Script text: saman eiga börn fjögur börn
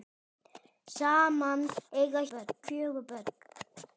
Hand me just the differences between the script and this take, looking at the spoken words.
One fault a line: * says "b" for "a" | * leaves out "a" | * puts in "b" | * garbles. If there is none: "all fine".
all fine